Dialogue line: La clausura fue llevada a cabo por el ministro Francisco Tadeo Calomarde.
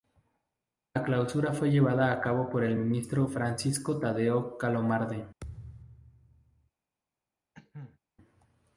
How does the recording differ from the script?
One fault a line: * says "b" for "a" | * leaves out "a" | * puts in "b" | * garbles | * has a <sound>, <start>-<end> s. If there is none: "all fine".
* has a thud, 5.4-6.7 s
* has a cough, 7.5-8.0 s